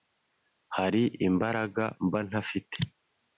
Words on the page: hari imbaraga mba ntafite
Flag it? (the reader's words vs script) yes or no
no